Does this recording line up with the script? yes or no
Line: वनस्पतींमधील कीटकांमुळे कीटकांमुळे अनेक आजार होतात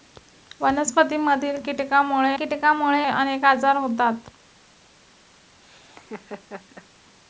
yes